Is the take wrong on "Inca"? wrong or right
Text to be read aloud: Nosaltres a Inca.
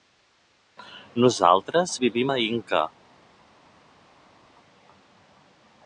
right